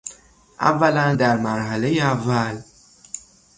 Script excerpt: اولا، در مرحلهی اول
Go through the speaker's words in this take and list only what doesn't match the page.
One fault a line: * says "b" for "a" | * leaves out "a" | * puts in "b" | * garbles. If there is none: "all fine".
all fine